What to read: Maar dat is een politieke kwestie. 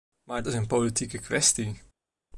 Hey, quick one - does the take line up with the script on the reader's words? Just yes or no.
no